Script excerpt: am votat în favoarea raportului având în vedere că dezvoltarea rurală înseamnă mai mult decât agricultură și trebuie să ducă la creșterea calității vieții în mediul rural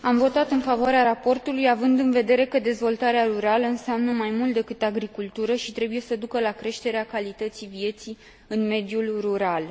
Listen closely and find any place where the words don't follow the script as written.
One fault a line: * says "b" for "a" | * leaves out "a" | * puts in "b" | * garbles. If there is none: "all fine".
all fine